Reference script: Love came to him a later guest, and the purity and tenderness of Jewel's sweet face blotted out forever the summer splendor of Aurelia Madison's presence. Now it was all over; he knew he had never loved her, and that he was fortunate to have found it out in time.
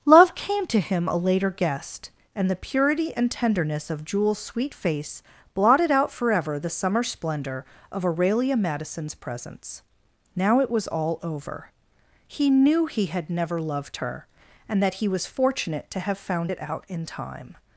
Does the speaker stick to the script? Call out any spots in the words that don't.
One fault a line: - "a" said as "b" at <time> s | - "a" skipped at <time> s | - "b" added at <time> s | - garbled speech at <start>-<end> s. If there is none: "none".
none